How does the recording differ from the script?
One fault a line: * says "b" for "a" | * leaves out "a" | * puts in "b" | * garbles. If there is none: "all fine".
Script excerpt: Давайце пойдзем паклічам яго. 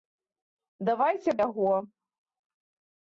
* leaves out "пойдзем паклічам"